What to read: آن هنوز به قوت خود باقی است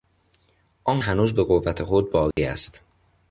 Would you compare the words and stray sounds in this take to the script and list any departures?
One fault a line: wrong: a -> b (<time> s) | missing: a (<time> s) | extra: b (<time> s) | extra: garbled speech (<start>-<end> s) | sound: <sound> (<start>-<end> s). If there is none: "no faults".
sound: dropout (2.3-2.4 s)